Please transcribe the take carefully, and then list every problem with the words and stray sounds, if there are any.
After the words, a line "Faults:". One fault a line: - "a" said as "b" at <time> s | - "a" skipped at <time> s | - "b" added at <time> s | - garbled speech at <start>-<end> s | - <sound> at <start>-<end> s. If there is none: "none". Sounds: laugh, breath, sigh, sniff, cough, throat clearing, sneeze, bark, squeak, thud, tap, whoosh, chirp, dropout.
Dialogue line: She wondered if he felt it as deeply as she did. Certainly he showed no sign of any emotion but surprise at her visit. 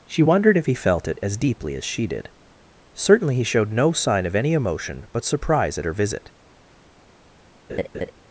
She wondered if he felt it as deeply as she did. Certainly he showed no sign of any emotion but surprise at her visit.
Faults:
- laugh at 7.7-8.1 s